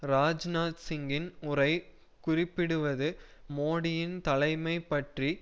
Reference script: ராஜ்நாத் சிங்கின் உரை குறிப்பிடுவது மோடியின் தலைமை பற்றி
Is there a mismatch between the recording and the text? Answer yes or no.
no